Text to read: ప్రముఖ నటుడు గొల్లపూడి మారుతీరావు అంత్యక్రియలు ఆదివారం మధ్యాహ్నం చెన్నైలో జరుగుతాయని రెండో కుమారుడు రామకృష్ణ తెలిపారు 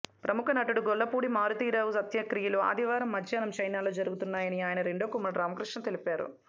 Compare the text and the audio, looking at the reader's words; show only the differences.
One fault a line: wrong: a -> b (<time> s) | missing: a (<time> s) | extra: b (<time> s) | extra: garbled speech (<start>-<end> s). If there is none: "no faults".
extra: ఆయన (4.6 s)